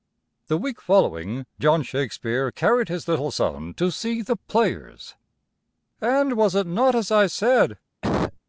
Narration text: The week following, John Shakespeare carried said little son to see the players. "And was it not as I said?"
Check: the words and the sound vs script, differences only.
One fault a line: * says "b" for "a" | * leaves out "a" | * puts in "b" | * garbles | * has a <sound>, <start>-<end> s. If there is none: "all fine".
* says "his" for "said"
* has a cough, 8.0-8.4 s